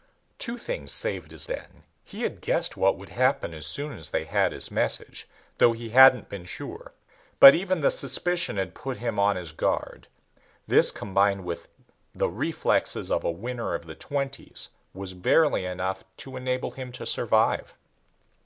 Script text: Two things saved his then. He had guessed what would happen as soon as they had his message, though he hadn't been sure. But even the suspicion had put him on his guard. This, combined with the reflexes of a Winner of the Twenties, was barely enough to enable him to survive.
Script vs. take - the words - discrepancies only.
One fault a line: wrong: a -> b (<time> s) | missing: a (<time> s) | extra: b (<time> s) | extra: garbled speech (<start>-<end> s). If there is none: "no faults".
no faults